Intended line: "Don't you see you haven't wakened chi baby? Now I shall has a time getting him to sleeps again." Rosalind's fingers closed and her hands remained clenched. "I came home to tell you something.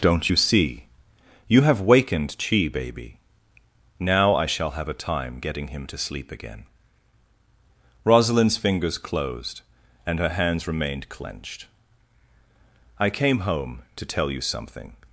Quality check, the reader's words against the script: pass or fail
fail